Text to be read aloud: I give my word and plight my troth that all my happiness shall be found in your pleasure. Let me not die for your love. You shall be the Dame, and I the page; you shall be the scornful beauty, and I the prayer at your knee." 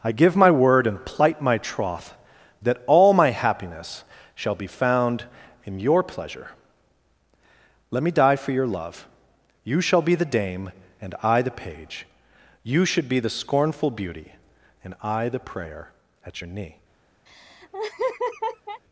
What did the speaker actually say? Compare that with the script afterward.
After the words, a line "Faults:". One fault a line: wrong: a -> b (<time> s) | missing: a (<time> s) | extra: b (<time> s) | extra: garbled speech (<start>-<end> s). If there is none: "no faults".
I give my word and plight my troth that all my happiness shall be found in your pleasure. Let me die for your love. You shall be the Dame, and I the page; you should be the scornful beauty, and I the prayer at your knee."
Faults:
missing: not (8.1 s)
wrong: shall -> should (12.8 s)